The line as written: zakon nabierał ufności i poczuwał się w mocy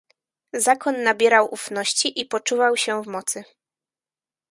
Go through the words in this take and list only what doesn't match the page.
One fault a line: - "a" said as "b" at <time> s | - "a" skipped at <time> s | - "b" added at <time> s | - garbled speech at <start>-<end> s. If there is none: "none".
none